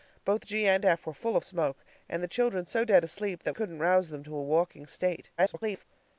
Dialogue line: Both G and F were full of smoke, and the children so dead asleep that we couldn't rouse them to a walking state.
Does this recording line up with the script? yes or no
no